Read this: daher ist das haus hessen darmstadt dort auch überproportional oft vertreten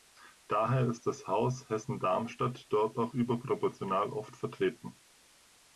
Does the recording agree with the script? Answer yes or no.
yes